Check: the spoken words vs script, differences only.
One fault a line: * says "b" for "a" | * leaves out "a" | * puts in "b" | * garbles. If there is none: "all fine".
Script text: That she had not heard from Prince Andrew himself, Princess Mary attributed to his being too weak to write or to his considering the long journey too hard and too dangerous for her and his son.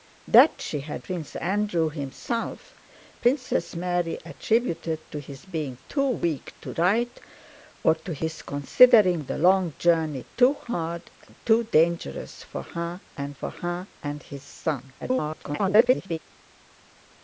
* leaves out "not heard from"
* puts in "for her and"
* garbles